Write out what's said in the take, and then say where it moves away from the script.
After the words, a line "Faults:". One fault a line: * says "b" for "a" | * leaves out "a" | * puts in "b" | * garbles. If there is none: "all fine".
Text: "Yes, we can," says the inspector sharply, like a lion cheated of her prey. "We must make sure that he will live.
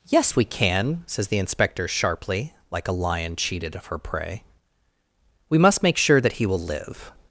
"Yes, we can," says the inspector sharply, like a lion cheated of her prey. "We must make sure that he will live.
Faults:
all fine